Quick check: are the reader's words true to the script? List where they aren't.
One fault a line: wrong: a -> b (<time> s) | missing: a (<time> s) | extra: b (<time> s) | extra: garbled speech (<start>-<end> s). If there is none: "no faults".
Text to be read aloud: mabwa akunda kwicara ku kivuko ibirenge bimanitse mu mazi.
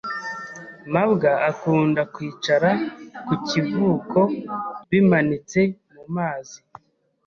missing: ibirenge (4.2 s)